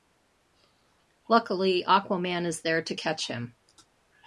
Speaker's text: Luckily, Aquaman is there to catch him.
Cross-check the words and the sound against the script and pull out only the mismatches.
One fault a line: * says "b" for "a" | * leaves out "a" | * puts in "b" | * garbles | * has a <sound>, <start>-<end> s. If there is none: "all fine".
all fine